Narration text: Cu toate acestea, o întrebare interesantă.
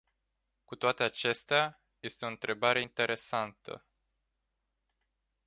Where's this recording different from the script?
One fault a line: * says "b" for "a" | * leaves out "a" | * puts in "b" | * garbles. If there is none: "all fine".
* puts in "este"